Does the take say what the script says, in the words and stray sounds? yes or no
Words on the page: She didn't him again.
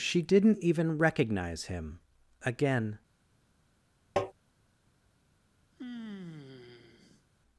no